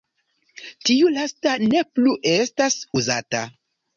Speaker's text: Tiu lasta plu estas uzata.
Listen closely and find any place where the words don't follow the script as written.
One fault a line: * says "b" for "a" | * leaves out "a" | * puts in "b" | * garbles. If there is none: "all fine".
* puts in "ne"